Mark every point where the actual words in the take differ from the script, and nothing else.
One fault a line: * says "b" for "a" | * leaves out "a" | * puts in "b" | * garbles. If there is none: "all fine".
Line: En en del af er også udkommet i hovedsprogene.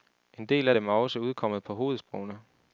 * leaves out "en"
* puts in "dem"
* says "på" for "i"